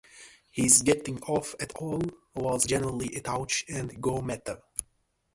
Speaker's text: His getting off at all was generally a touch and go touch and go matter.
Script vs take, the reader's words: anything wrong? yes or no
yes